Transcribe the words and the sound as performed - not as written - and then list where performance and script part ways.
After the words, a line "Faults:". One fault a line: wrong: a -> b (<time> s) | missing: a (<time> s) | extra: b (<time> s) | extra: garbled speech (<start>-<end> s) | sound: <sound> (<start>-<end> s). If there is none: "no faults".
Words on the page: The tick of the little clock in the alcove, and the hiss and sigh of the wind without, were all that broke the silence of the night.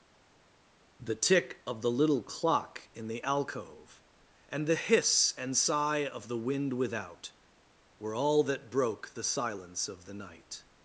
The tick of the little clock in the alcove, and the hiss and sigh of the wind without, were all that broke the silence of the night.
Faults:
no faults